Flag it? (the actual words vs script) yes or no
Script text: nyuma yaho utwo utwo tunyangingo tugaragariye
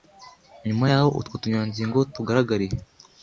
yes